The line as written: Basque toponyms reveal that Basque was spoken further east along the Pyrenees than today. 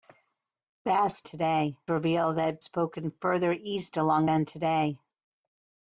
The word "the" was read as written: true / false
false